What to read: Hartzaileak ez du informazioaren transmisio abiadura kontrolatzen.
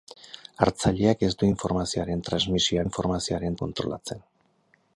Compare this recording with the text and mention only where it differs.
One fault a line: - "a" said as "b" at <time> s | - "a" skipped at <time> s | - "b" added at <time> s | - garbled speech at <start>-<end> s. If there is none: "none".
- "abiadura" said as "informazioaren" at 2.8 s